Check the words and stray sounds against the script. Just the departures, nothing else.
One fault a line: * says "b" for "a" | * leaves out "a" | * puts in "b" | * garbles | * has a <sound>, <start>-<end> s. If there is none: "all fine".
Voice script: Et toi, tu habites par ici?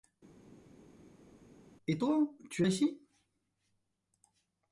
* leaves out "habites par"